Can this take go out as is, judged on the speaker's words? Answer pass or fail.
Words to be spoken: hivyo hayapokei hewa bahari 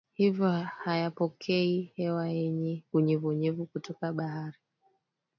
fail